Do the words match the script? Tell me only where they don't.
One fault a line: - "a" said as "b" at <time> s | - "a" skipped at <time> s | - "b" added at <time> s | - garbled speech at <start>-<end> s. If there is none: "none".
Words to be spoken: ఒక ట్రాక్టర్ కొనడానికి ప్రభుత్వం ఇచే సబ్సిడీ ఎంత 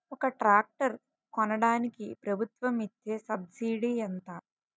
none